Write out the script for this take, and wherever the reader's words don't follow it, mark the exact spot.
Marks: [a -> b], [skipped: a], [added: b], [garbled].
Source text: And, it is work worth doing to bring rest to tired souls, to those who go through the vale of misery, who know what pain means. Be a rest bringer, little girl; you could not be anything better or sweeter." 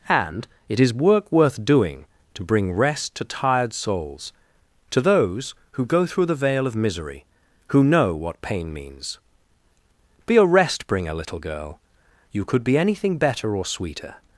And, it is work worth doing to bring rest to tired souls, to those who go through the vale of misery, who know what pain means. Be a rest bringer, little girl; you could [skipped: not] be anything better or sweeter."